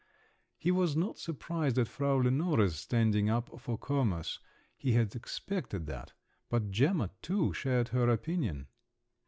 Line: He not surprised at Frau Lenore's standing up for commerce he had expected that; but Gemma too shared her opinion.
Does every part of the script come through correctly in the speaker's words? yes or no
no